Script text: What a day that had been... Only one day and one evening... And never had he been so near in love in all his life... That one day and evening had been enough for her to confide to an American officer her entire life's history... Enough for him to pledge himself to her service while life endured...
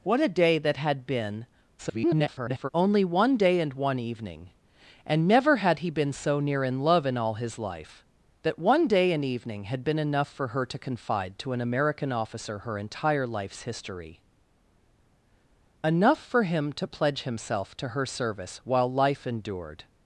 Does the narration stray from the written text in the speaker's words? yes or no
yes